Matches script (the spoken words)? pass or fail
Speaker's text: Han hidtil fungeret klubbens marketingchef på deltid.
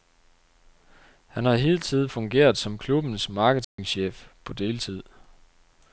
fail